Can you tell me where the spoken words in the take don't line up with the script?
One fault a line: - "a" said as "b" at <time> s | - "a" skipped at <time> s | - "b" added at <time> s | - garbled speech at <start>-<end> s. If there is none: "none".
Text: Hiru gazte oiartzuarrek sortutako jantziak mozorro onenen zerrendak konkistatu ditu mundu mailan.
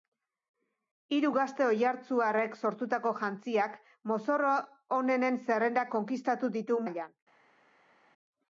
- "mundu" skipped at 6.8 s